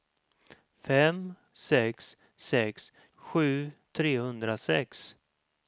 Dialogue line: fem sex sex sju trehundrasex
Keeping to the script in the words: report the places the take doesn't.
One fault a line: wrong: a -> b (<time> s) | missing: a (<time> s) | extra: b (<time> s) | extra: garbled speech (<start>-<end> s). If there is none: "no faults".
no faults